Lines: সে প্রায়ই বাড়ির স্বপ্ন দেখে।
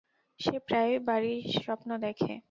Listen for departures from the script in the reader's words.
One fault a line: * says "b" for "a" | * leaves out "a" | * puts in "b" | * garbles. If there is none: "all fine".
all fine